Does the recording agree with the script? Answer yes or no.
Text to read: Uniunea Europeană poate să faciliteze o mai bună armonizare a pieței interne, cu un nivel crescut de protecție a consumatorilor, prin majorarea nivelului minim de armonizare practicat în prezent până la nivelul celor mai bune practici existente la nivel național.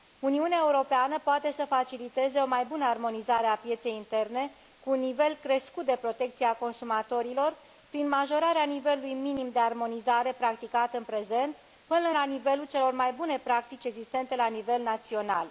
yes